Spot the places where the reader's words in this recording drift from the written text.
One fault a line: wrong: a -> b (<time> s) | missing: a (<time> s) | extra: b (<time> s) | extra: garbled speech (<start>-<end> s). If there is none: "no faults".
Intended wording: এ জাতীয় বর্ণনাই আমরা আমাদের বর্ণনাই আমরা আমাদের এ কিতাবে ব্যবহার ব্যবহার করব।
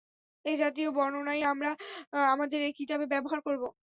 missing: বর্ণনাই আমরা আমাদের (2.6 s)
missing: ব্যবহার (3.4 s)